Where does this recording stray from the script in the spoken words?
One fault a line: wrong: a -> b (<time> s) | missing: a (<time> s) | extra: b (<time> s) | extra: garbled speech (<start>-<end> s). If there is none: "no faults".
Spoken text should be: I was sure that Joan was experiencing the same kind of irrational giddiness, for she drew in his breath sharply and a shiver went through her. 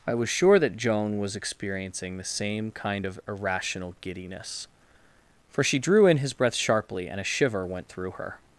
no faults